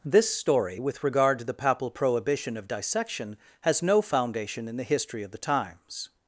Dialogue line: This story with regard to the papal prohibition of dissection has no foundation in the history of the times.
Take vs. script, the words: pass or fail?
pass